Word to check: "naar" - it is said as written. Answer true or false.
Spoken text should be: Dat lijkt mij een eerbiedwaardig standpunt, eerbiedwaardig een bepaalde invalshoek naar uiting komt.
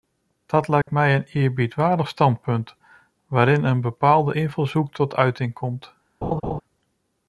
false